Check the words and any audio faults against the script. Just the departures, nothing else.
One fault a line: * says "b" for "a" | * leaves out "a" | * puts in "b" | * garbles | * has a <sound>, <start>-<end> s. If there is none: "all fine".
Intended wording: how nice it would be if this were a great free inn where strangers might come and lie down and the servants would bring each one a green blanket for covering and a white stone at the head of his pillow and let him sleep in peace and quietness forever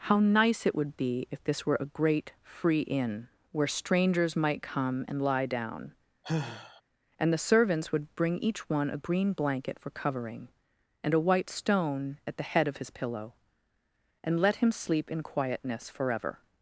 * has a sigh, 6.2-6.8 s
* leaves out "peace and"